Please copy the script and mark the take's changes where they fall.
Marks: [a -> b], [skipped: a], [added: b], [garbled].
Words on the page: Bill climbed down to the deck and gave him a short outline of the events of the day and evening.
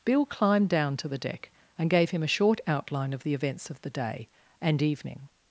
Bill climbed down to the deck and gave him a short outline of the events of the day and evening.